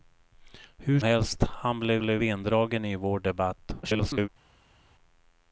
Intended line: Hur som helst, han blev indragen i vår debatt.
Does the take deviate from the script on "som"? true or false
true